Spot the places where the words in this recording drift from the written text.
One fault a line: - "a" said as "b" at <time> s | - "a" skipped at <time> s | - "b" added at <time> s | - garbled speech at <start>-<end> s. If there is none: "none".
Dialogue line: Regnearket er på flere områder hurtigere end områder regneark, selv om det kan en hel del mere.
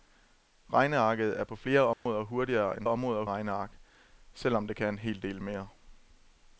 none